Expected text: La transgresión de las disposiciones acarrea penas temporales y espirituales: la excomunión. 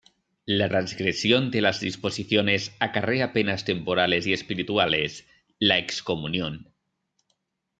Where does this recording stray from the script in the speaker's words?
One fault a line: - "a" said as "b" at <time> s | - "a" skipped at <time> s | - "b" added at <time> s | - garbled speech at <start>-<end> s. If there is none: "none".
none